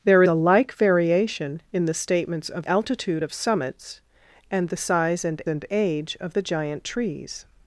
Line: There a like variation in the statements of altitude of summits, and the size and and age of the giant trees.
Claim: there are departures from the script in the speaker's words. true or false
false